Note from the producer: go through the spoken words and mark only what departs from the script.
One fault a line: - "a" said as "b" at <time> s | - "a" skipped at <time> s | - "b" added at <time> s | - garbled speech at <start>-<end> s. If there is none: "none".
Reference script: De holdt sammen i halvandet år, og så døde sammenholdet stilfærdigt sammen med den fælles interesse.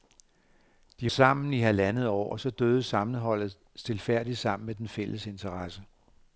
- "holdt" skipped at 1.1 s